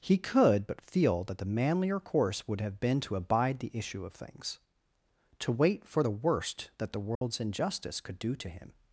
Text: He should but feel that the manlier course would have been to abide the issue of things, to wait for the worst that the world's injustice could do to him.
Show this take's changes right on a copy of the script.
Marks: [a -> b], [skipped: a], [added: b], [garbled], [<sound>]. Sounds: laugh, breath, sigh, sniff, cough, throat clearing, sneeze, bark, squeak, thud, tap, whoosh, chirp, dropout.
He [should -> could] but feel that the manlier course would have been to abide the issue of things, to wait for the worst that the world's [dropout] injustice could do to him.